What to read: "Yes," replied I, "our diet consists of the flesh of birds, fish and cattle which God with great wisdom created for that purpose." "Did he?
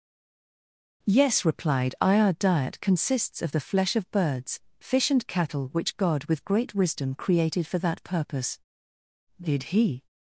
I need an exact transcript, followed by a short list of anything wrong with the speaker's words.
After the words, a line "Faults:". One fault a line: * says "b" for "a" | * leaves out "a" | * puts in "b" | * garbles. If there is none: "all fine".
"Yes," replied I, "our diet consists of the flesh of birds, fish and cattle which God with great wisdom created for that purpose." "Did he?
Faults:
all fine